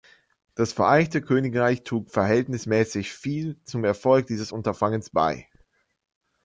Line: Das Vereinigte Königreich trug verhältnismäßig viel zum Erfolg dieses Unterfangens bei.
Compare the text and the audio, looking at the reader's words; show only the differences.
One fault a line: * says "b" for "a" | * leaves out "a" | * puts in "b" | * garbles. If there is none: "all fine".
all fine